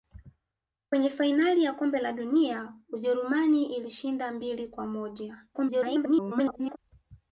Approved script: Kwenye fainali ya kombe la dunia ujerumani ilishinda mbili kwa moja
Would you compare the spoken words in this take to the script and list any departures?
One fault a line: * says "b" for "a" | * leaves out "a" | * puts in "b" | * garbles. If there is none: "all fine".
* garbles